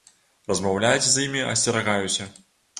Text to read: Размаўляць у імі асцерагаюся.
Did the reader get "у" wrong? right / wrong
wrong